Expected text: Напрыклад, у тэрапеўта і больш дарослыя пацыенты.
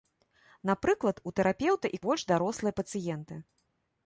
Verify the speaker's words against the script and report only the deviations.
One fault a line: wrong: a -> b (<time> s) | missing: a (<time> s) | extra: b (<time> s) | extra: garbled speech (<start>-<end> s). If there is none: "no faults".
no faults